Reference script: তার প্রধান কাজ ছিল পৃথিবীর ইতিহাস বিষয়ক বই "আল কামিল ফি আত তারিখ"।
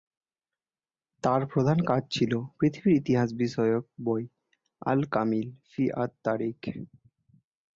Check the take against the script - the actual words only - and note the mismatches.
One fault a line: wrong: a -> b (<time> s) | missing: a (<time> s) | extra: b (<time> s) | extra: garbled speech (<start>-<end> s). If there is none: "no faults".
no faults